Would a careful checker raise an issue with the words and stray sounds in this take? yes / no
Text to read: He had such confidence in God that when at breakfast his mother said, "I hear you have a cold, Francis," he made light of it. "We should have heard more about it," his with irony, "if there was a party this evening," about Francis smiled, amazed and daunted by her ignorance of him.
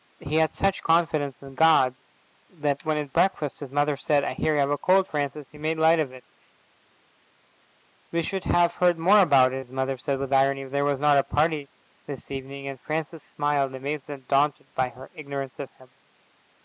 yes